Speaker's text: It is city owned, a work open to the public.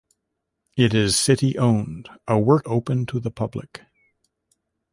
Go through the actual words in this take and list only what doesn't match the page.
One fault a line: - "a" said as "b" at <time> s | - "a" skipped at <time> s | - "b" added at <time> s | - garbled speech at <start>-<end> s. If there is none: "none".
none